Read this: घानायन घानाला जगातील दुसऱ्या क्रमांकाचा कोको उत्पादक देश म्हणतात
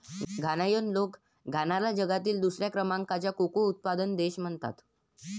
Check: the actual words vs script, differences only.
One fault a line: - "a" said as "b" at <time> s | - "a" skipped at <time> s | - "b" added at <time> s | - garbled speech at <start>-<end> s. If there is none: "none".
- "लोक" added at 0.9 s